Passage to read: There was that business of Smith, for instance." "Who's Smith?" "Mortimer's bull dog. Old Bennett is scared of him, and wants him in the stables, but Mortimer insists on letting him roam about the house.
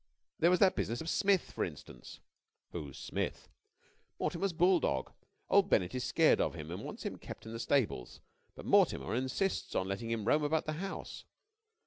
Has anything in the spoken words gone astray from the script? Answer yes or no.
yes